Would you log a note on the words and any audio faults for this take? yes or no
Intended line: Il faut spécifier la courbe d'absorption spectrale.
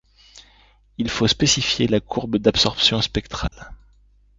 yes